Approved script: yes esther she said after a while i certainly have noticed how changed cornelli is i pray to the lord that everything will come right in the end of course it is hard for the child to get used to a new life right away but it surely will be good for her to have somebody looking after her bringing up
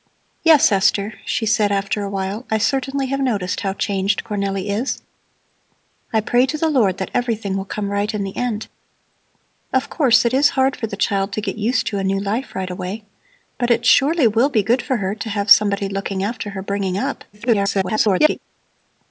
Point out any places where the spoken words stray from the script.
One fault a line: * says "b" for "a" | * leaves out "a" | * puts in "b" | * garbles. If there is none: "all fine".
* garbles